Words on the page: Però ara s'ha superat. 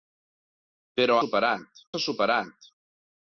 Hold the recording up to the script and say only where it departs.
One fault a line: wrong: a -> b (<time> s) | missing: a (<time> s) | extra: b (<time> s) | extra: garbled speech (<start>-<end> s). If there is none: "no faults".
wrong: ara -> superat (1.2 s)